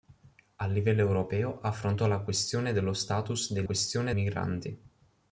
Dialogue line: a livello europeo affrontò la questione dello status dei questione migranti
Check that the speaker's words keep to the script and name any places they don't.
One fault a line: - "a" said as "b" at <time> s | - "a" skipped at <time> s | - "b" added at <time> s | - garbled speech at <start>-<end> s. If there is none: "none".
none